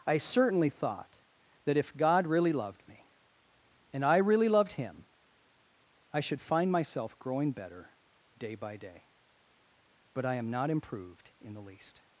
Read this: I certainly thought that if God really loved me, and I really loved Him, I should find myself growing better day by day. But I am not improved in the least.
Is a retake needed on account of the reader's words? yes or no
no